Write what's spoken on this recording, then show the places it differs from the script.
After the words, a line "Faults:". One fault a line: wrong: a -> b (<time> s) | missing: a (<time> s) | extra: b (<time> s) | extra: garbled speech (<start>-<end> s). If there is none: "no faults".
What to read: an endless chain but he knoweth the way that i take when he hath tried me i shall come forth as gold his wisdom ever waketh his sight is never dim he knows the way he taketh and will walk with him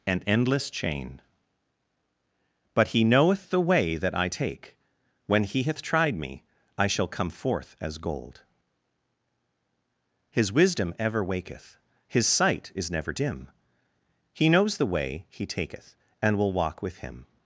an endless chain but he knoweth the way that i take when he hath tried me i shall come forth as gold his wisdom ever waketh his sight is never dim he knows the way he taketh and will walk with him
Faults:
no faults